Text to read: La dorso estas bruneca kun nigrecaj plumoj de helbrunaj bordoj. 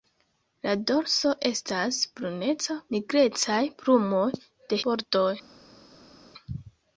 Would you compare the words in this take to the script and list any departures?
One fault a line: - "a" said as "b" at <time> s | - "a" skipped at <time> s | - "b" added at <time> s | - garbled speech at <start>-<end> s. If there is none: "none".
- "kun" skipped at 2.8 s
- "helbrunaj" skipped at 4.8 s